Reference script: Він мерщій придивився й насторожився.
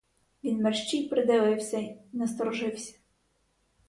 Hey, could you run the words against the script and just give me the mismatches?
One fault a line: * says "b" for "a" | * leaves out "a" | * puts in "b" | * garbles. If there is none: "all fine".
all fine